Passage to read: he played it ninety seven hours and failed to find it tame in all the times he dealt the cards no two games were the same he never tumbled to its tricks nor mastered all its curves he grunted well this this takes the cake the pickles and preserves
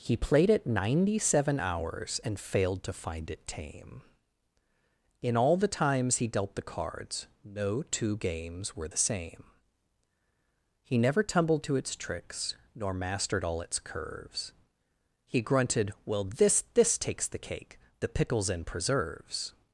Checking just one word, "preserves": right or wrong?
right